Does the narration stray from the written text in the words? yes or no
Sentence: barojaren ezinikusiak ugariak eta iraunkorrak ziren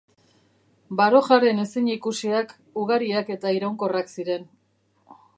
no